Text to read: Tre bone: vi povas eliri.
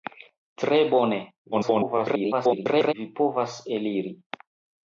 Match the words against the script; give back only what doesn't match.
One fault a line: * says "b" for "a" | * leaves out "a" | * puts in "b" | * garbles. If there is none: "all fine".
* garbles